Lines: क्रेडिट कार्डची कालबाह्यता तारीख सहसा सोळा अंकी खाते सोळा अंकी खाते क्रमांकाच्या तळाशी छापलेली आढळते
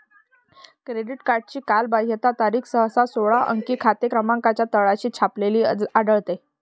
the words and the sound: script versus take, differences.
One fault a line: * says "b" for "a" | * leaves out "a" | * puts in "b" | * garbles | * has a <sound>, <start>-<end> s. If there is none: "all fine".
* leaves out "सोळा अंकी खाते"